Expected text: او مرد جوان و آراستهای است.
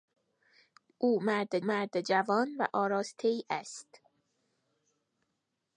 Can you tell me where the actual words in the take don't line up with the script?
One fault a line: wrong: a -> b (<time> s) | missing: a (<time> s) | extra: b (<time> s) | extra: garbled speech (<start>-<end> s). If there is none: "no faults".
extra: مرد (1.6 s)